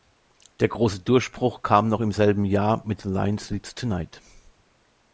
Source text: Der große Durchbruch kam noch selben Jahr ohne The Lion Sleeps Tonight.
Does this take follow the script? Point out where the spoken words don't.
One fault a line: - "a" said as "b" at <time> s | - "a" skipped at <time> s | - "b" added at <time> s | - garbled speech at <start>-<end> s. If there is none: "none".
- "im" added at 2.0 s
- "ohne" said as "mit" at 2.8 s